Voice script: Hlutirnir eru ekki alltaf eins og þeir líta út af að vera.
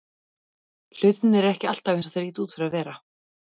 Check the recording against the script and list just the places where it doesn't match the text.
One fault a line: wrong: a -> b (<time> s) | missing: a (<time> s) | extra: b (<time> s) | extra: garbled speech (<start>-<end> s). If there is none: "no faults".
wrong: af -> fyrir (2.6 s)